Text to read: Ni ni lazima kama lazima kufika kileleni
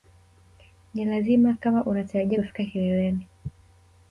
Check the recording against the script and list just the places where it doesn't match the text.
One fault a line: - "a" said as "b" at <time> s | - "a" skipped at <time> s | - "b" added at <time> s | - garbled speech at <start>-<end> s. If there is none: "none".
- "ni" skipped at 1.1 s
- "lazima" said as "unatarajia" at 1.9 s